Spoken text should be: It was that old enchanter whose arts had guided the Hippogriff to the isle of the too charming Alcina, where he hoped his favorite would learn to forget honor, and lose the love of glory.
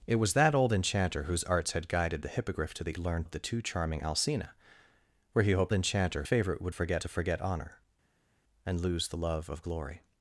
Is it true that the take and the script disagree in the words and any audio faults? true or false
true